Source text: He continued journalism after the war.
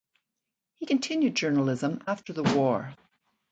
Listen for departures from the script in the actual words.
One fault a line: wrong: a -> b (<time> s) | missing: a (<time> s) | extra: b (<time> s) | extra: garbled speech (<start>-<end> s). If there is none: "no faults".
no faults